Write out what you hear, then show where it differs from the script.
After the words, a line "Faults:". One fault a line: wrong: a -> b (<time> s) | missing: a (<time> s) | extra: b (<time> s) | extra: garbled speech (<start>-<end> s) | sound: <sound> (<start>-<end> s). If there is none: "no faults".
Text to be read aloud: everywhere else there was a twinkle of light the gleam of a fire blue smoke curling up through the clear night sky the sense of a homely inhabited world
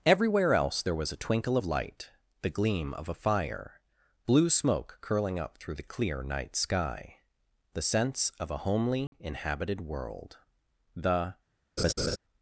everywhere else there was a twinkle of light the gleam of a fire blue smoke curling up through the clear night sky the sense of a homely inhabited world the
Faults:
sound: dropout (9.1-9.1 s)
extra: the (11.0 s)
sound: laugh (11.8-12.2 s)